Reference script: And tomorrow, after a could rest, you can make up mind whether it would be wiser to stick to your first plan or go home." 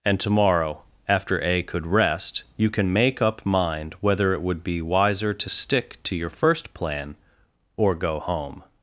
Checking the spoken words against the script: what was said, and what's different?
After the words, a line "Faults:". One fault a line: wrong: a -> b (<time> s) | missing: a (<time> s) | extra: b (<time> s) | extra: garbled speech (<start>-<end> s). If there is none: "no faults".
And tomorrow, after a could rest, you can make up mind whether it would be wiser to stick to your first plan or go home."
Faults:
no faults